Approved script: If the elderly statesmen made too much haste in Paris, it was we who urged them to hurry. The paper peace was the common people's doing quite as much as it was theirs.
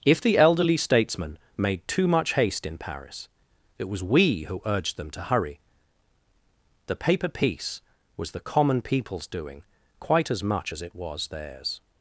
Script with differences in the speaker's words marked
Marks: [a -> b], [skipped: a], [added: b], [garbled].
If the elderly statesmen made too much haste in Paris, it was we who urged them to hurry. The paper peace was the common people's doing quite as much as it was theirs.